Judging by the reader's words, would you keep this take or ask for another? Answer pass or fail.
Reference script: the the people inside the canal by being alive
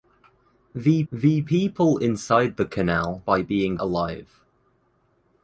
pass